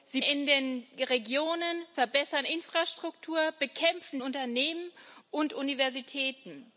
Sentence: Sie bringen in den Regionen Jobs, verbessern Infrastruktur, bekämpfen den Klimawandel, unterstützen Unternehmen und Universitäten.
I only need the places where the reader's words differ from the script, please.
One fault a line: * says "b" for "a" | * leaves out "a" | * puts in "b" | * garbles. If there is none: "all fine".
* leaves out "bringen"
* leaves out "Jobs"
* leaves out "den Klimawandel unterstützen"